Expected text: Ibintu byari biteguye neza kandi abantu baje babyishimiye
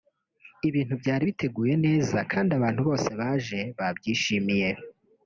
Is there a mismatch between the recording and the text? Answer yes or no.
yes